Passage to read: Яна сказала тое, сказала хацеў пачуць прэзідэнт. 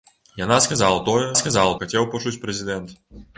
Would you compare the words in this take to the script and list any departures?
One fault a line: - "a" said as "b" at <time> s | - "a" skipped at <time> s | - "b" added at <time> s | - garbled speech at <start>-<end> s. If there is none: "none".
none